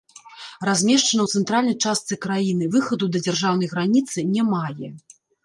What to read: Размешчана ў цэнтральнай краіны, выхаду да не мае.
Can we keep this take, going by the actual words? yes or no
no